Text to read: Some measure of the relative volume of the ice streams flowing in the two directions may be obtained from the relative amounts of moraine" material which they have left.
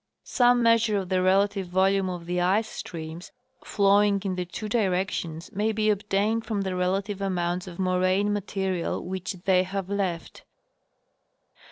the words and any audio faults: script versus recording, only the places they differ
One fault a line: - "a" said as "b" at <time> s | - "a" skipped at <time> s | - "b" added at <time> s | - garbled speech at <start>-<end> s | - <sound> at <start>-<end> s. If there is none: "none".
none